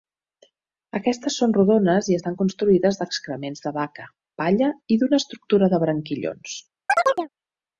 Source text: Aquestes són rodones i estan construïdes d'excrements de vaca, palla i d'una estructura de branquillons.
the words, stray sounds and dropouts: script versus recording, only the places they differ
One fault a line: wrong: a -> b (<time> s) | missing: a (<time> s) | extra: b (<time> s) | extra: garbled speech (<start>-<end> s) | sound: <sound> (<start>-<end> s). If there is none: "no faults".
sound: chirp (6.9-7.3 s)